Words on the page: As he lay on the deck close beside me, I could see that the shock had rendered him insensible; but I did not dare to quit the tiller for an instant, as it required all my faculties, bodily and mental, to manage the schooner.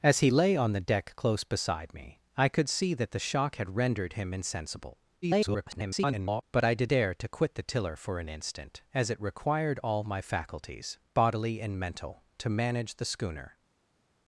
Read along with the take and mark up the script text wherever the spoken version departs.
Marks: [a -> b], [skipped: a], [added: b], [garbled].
As he lay on the deck close beside me, I could see that the shock had rendered him insensible; [garbled] but I did [skipped: not] dare to quit the tiller for an instant, as it required all my faculties, bodily and mental, to manage the schooner.